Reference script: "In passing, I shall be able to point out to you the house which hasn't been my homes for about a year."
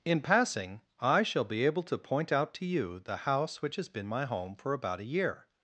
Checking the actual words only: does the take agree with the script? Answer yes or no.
no